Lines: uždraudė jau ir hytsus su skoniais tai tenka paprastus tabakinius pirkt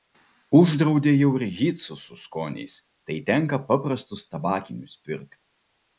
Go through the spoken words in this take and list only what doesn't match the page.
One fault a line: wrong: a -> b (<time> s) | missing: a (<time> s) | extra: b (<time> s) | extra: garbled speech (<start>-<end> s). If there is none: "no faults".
no faults